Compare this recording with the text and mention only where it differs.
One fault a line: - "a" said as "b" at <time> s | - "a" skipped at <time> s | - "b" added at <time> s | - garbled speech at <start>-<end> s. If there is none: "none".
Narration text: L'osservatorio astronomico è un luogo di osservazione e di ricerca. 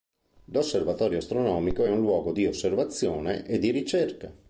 none